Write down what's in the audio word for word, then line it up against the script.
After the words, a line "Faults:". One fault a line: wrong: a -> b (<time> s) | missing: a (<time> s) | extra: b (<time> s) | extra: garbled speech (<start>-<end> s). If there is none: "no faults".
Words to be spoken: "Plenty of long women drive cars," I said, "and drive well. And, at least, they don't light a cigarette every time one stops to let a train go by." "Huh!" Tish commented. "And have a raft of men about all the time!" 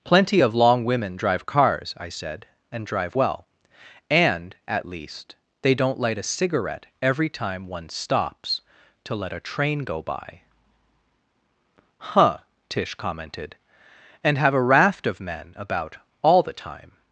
"Plenty of long women drive cars," I said, "and drive well. And, at least, they don't light a cigarette every time one stops to let a train go by." "Huh!" Tish commented. "And have a raft of men about all the time!"
Faults:
no faults